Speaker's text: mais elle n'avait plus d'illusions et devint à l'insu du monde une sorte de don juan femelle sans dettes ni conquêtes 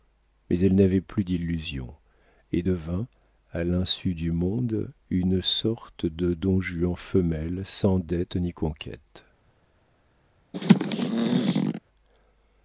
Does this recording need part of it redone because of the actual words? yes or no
no